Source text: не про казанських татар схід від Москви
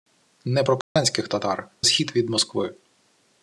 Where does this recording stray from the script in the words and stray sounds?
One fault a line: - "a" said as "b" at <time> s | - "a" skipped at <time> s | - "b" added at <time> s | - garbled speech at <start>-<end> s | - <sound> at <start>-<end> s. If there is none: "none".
- dropout at 0.8-1.0 s